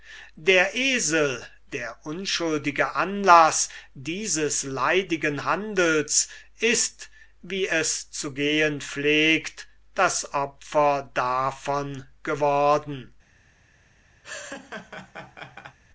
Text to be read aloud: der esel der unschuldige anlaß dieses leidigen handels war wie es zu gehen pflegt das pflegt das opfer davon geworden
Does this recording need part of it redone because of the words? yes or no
yes